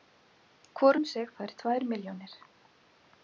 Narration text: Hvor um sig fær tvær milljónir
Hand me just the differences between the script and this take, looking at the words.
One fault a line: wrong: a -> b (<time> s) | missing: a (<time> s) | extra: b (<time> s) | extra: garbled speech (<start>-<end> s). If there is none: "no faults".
no faults